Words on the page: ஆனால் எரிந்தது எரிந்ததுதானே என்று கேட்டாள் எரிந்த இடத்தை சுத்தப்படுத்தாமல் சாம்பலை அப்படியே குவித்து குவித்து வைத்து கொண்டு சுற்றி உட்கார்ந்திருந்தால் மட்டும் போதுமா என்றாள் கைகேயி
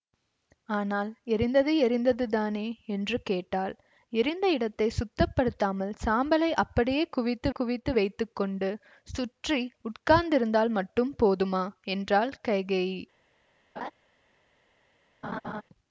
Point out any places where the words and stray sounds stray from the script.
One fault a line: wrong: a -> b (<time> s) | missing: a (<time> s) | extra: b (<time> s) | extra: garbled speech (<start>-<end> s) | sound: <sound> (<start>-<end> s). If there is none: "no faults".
sound: laugh (13.8-13.9 s)
sound: laugh (15.2-15.6 s)